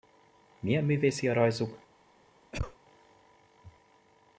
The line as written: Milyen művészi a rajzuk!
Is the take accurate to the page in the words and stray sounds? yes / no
no